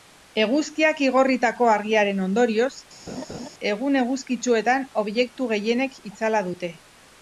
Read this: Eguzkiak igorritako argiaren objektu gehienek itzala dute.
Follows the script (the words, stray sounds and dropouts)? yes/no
no